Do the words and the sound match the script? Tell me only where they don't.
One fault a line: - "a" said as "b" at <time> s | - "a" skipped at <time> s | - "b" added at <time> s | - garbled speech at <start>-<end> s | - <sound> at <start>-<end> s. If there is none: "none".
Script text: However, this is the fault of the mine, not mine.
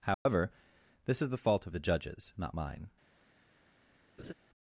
- dropout at 0.1-0.3 s
- "mine" said as "judges" at 1.8 s
- laugh at 4.2-4.3 s